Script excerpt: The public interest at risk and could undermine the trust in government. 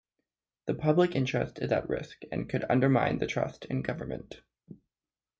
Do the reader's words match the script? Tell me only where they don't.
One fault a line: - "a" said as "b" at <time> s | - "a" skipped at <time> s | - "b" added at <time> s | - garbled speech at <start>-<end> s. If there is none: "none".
- "is" added at 1.6 s